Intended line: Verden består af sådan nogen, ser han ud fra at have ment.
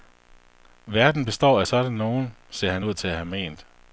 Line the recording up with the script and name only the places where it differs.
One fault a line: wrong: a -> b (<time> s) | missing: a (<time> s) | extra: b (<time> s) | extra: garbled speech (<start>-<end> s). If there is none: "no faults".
wrong: fra -> til (2.9 s)